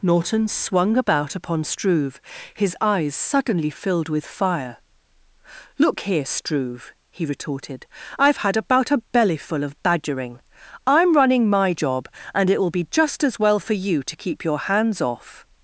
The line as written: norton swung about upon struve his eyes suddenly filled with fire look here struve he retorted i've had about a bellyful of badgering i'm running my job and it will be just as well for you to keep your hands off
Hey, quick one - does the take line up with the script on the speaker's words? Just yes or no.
yes